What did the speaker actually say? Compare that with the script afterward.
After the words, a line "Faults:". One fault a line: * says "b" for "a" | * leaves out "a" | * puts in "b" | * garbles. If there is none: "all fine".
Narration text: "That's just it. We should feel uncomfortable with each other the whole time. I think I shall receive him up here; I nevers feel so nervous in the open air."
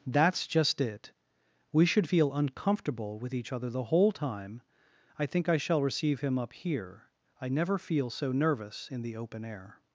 "That's just it. We should feel uncomfortable with each other the whole time. I think I shall receive him up here; I never feel so nervous in the open air."
Faults:
* says "never" for "nevers"